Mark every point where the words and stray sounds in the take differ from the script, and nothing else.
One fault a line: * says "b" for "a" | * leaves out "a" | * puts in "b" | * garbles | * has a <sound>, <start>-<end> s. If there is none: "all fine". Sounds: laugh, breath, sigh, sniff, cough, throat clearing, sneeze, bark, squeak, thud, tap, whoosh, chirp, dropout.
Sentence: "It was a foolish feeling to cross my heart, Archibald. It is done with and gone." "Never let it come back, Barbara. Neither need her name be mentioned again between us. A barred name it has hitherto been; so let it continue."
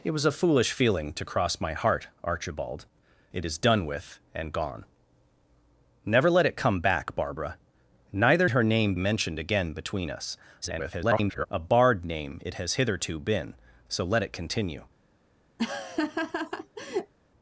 * leaves out "need"
* leaves out "be"
* garbles
* has a laugh, 15.6-17.1 s